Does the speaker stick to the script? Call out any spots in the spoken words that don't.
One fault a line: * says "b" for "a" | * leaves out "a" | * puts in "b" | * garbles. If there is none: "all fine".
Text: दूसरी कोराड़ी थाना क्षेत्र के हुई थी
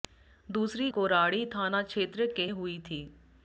all fine